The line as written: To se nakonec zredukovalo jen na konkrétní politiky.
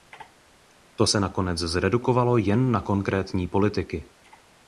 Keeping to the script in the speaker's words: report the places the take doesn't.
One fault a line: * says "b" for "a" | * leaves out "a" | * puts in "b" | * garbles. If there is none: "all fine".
all fine